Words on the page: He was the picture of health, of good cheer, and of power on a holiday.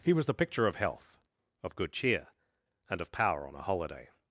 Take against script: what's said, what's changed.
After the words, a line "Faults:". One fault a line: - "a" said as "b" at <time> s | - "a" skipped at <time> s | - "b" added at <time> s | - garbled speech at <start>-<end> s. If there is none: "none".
He was the picture of health, of good cheer, and of power on a holiday.
Faults:
none